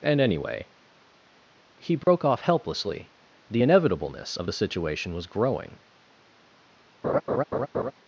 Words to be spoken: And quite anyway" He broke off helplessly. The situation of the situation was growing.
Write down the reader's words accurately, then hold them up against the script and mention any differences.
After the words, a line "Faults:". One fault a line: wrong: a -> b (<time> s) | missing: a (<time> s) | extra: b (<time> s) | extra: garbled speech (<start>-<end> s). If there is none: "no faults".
And anyway" He broke off helplessly. The inevitableness of the situation was growing.
Faults:
missing: quite (0.2 s)
wrong: situation -> inevitableness (3.6 s)